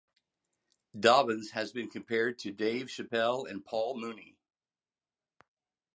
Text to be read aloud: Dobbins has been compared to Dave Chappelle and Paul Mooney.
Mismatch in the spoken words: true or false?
false